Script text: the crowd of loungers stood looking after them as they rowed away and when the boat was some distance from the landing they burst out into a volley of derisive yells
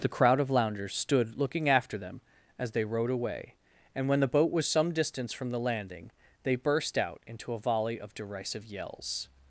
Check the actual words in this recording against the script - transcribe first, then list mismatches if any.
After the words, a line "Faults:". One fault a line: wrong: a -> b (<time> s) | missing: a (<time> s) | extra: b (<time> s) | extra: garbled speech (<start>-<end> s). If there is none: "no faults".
the crowd of loungers stood looking after them as they rowed away and when the boat was some distance from the landing they burst out into a volley of derisive yells
Faults:
no faults